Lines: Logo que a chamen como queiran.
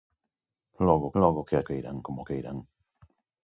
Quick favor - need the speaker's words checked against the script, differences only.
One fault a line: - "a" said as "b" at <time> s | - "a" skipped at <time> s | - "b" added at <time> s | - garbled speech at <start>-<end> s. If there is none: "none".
- "logo" added at 1.2 s
- "chamen" said as "queiran" at 1.7 s